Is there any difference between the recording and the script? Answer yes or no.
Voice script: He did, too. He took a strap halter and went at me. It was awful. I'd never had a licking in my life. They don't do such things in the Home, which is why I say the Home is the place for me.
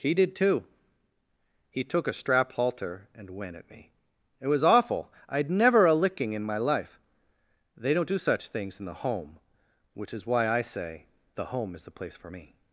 yes